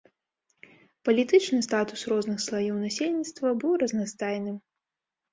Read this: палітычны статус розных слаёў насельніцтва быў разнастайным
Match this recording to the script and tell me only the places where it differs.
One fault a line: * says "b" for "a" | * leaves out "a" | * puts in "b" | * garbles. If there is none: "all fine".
all fine